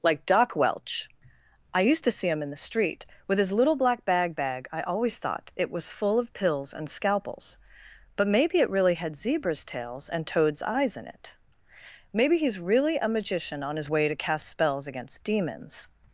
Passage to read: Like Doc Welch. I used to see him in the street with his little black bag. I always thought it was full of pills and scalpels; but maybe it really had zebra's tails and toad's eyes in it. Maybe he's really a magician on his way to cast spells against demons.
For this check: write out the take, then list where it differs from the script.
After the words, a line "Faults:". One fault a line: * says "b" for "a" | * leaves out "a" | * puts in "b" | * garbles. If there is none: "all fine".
Like Doc Welch. I used to see him in the street with his little black bag bag. I always thought it was full of pills and scalpels; but maybe it really had zebra's tails and toad's eyes in it. Maybe he's really a magician on his way to cast spells against demons.
Faults:
* puts in "bag"